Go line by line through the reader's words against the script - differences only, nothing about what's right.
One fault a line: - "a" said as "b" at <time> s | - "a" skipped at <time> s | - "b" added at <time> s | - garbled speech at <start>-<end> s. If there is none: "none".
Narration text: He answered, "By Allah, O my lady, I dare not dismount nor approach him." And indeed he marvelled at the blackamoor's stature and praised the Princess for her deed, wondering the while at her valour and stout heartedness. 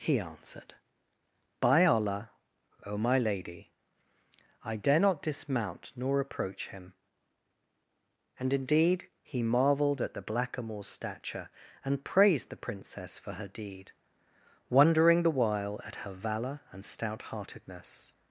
none